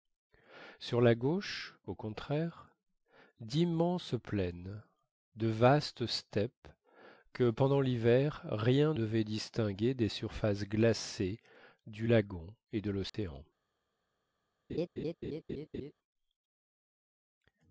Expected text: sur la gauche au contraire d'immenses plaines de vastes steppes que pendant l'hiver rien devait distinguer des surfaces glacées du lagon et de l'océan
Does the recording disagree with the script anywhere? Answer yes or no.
no